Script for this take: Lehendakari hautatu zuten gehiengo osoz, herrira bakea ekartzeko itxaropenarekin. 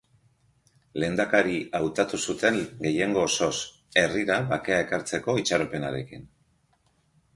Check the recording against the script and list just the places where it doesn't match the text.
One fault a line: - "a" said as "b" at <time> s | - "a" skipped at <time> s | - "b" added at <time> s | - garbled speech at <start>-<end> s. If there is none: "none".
none